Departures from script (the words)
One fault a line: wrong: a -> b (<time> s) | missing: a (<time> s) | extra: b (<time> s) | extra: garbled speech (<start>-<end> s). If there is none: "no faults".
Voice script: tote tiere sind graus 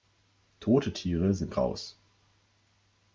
no faults